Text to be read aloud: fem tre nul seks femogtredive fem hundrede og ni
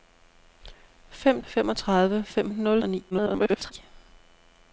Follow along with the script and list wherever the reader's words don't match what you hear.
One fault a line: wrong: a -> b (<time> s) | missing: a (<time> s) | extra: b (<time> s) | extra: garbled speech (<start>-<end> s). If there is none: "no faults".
missing: tre nul seks (1.4 s)
wrong: hundrede -> nul (2.5 s)
extra: garbled speech (3.1-3.7 s)